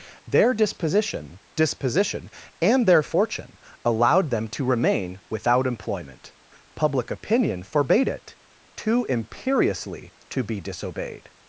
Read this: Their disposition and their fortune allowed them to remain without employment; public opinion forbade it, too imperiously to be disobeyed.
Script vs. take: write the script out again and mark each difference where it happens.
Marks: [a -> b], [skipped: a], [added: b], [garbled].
Their disposition [added: disposition] and their fortune allowed them to remain without employment; public opinion forbade it, too imperiously to be disobeyed.